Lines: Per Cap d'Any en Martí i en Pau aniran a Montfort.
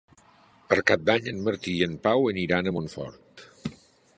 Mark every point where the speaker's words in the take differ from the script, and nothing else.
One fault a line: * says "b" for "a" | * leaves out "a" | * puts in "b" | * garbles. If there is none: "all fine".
all fine